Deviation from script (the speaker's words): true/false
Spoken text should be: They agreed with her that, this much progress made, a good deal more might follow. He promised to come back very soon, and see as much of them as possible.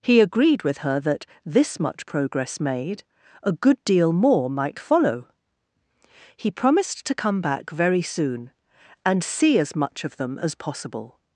true